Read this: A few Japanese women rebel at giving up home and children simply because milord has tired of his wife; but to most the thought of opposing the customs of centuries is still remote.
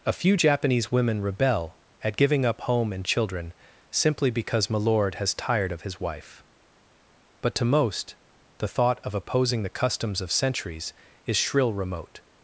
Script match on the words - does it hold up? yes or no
no